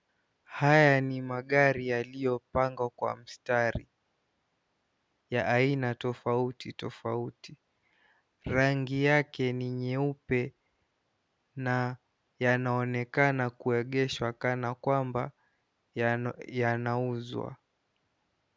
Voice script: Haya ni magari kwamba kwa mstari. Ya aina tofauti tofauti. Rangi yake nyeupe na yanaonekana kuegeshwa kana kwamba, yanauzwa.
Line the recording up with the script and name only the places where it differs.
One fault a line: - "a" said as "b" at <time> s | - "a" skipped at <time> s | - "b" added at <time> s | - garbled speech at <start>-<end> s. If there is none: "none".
- "kwamba" said as "yaliyopangwa" at 1.9 s
- "ni" added at 9.5 s